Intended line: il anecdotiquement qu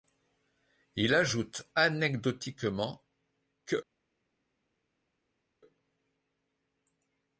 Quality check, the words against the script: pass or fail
fail